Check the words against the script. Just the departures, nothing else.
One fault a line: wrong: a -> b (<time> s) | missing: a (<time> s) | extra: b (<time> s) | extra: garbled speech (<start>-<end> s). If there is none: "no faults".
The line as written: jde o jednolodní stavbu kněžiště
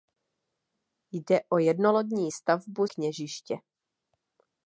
no faults